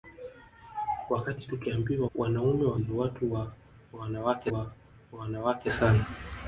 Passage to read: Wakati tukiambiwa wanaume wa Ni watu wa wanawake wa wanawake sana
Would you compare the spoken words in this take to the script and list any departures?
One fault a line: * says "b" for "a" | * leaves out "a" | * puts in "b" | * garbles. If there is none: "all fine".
all fine